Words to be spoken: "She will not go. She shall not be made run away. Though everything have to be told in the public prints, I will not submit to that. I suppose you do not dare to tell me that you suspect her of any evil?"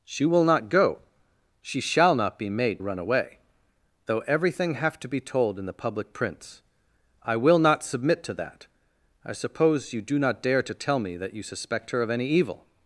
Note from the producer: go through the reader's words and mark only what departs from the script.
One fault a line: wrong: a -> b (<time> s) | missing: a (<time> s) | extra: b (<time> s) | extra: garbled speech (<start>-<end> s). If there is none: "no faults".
no faults